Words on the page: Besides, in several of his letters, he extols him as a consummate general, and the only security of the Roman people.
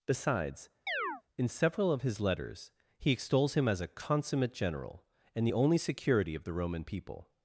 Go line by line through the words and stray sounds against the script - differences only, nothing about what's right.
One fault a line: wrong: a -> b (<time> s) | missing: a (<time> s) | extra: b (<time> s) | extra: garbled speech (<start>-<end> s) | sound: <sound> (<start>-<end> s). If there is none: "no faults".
sound: chirp (0.9-1.2 s)